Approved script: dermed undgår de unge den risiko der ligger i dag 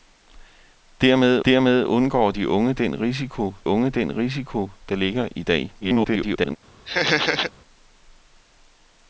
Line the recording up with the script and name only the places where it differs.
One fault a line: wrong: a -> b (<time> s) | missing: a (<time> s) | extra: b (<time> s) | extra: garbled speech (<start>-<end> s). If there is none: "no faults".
extra: dermed (1.4 s)
extra: unge den risiko (3.6 s)
extra: garbled speech (5.8-6.6 s)